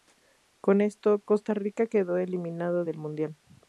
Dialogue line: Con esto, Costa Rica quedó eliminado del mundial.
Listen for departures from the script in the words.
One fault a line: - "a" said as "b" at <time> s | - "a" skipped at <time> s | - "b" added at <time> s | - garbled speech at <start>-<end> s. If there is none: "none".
none